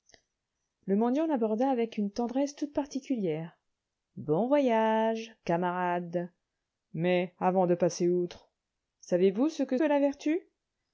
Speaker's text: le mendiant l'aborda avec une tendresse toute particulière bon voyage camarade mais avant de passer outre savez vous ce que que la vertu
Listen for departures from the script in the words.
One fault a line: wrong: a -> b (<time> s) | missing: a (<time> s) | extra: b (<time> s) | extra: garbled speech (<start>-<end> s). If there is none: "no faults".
no faults